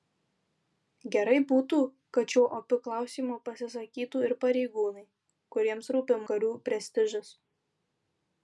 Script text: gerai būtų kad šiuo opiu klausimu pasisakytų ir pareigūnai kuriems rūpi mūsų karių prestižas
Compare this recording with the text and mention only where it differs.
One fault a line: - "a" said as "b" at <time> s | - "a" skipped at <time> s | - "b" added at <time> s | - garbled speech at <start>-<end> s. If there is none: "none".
- "mūsų" skipped at 6.2 s